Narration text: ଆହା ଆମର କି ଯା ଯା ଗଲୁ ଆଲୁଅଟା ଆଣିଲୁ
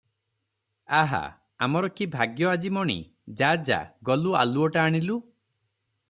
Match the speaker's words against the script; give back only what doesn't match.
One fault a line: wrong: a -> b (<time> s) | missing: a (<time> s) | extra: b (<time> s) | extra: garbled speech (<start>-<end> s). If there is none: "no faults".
extra: ଭାଗ୍ୟ ଆଜି ମଣି (2.1 s)